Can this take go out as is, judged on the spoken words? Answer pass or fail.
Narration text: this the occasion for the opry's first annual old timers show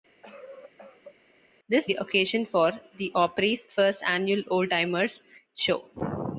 pass